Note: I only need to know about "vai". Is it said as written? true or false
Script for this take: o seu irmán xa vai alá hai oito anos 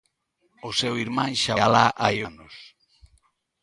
false